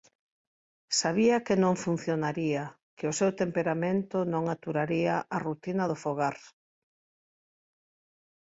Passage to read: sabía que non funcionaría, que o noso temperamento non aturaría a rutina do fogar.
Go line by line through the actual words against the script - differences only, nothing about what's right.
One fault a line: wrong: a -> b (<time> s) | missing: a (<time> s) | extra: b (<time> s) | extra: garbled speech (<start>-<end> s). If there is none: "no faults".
wrong: noso -> seu (3.2 s)